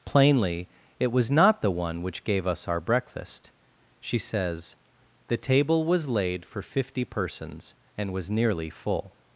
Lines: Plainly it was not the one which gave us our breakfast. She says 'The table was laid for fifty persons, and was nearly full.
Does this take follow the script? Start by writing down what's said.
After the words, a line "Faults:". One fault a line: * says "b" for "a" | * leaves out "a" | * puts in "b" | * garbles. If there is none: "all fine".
Plainly it was not the one which gave us our breakfast. She says 'The table was laid for fifty persons, and was nearly full.
Faults:
all fine